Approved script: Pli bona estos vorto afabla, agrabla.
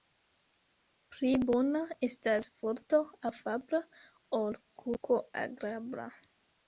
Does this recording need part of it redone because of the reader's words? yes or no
yes